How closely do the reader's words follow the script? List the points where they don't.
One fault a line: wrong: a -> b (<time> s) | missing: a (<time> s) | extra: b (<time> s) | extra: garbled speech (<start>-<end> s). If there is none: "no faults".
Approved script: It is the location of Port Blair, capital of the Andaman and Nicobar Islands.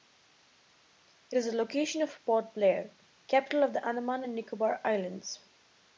no faults